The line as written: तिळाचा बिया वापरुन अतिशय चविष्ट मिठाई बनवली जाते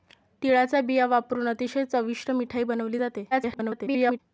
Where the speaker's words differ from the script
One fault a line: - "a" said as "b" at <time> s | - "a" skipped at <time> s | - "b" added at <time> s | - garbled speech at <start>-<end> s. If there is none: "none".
- garbled speech at 3.3-4.2 s